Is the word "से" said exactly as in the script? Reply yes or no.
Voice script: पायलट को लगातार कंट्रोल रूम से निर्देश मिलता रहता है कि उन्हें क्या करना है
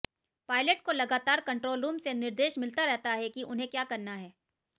yes